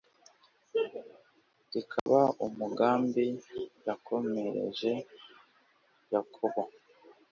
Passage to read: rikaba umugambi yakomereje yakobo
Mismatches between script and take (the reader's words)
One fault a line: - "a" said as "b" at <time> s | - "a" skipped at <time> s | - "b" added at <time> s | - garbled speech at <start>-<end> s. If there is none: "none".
none